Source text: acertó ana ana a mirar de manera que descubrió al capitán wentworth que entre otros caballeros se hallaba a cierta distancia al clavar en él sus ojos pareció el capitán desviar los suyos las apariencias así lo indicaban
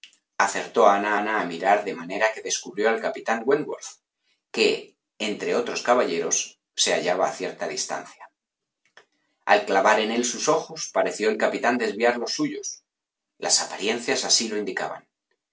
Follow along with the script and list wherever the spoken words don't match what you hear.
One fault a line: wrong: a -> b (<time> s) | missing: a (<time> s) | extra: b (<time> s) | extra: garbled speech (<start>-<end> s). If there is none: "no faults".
no faults